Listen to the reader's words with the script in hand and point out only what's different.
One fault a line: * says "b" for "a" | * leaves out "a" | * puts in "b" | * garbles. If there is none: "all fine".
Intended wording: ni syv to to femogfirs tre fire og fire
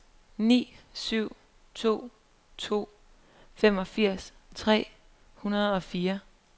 * says "hundrede" for "fire"